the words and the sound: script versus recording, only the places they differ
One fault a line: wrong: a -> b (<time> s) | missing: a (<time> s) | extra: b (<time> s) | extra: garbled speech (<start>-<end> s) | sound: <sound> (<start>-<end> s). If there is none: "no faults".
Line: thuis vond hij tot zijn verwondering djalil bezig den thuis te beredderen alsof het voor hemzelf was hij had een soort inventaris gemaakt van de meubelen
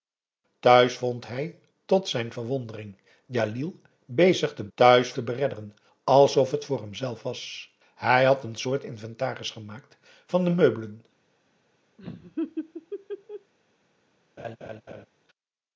sound: laugh (12.0-13.5 s)
sound: laugh (14.4-15.1 s)